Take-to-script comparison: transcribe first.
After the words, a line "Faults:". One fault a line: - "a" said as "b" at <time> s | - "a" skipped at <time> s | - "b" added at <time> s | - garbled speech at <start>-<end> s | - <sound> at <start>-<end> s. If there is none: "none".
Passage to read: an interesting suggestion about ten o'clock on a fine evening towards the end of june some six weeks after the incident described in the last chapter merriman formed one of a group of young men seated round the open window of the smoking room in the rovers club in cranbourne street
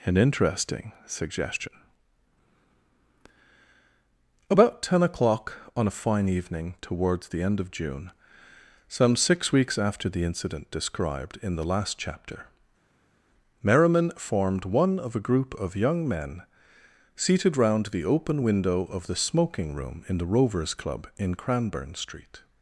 an interesting suggestion about ten o'clock on a fine evening towards the end of june some six weeks after the incident described in the last chapter merriman formed one of a group of young men seated round the open window of the smoking room in the rovers club in cranbourne street
Faults:
none